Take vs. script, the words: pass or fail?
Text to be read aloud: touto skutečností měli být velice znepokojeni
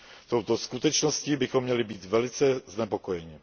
fail